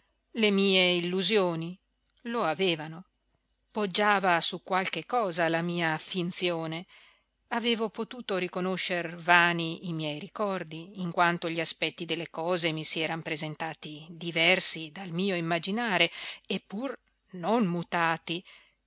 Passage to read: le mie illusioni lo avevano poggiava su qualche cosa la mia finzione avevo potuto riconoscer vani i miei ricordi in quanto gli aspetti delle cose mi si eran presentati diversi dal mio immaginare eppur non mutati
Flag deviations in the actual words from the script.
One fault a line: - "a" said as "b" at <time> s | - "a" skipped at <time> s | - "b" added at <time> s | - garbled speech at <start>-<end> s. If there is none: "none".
none